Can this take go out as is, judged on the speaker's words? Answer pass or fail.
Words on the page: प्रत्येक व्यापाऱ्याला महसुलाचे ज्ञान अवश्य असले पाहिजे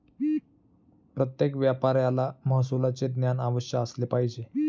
pass